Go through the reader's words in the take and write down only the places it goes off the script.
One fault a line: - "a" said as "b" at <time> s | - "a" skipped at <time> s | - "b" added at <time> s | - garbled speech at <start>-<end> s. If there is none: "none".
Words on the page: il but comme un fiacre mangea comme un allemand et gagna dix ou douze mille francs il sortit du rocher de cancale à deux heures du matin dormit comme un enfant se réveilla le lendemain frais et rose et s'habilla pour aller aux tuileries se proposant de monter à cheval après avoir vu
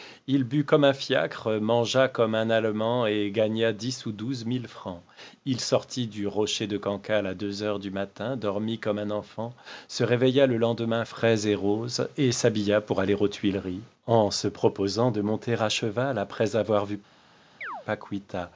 - "en" added at 14.1 s